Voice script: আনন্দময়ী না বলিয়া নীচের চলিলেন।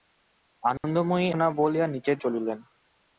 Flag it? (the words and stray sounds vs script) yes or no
yes